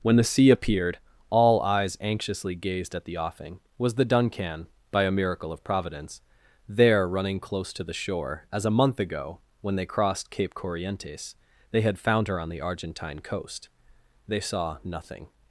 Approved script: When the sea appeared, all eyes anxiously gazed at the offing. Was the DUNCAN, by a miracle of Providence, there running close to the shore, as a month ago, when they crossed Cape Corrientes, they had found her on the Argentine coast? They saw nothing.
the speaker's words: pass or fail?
pass